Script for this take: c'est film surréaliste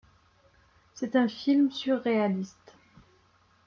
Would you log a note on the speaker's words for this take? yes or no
yes